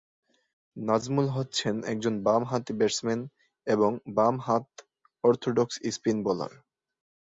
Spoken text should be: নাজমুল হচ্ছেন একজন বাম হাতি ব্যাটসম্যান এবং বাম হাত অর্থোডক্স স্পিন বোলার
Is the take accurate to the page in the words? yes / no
yes